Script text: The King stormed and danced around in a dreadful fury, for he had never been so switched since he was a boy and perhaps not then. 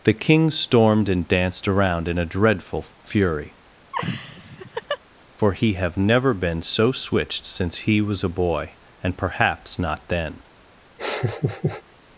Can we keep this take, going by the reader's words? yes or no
no